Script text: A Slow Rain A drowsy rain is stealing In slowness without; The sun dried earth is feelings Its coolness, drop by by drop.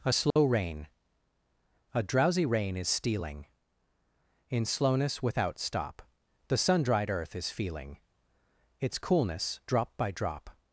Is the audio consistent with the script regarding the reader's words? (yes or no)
no